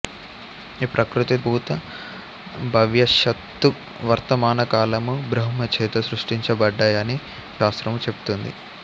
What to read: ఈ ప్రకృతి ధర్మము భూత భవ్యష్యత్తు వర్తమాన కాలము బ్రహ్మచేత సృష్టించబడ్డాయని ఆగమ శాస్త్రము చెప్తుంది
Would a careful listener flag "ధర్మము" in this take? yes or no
yes